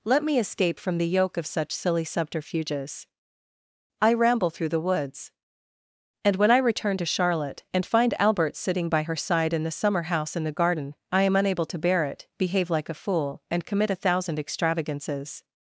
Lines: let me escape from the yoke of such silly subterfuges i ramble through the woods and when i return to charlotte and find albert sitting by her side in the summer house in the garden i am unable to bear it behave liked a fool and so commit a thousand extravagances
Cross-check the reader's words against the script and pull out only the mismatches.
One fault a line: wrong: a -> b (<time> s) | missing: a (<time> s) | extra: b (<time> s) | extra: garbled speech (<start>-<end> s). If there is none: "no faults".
wrong: liked -> like (12.7 s)
missing: so (13.6 s)